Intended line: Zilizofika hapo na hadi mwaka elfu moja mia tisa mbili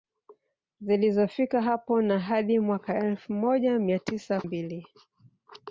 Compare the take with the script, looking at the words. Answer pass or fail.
pass